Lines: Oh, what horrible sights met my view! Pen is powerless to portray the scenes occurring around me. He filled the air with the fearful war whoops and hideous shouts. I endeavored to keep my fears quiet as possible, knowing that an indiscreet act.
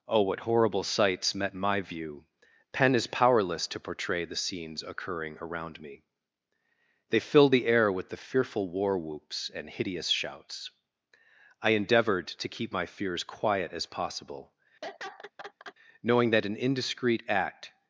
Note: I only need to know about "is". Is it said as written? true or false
true